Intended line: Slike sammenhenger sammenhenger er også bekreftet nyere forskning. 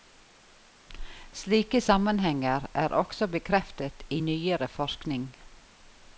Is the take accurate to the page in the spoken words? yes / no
no